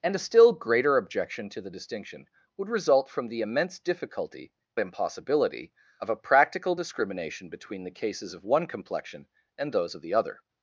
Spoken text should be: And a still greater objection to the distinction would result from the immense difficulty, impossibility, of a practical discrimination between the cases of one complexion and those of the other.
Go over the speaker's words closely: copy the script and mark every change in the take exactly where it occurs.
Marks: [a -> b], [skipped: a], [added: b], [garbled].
And a still greater objection to the distinction would result from the immense difficulty, impossibility, of a practical discrimination between the cases of one complexion and those of the other.